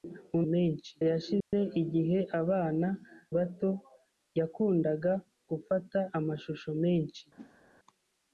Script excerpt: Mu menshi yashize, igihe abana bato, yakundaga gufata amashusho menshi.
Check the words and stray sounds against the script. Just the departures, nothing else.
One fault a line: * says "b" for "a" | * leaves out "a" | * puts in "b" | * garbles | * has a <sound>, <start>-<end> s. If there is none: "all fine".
* has a dropout, 1.4-1.5 s
* has a whoosh, 7.4-7.6 s